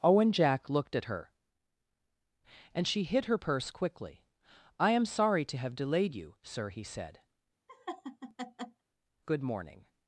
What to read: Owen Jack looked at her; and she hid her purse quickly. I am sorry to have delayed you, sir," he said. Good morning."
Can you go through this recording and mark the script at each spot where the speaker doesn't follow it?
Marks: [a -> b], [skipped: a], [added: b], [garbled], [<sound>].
Owen Jack looked at her; and she hid her purse quickly. I am sorry to have delayed you, sir," he said. [laugh] Good morning."